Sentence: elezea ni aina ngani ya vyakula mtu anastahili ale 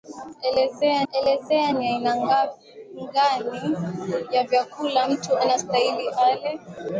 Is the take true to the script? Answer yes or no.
no